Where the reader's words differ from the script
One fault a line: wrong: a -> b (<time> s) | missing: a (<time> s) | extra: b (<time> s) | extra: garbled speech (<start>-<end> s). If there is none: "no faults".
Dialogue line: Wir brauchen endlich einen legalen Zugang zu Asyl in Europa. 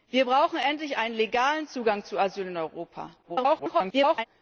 extra: garbled speech (3.2-4.3 s)